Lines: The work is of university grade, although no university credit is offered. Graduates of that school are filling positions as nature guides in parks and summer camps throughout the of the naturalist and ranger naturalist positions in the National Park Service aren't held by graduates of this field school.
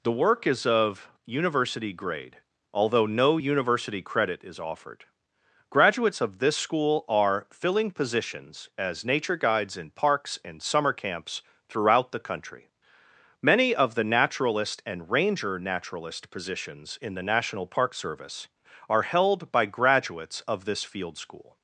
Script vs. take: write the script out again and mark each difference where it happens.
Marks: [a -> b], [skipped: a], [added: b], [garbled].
The work is of university grade, although no university credit is offered. Graduates of [that -> this] school are filling positions as nature guides in parks and summer camps throughout the [added: country Many] of the naturalist and ranger naturalist positions in the National Park Service [aren't -> are] held by graduates of this field school.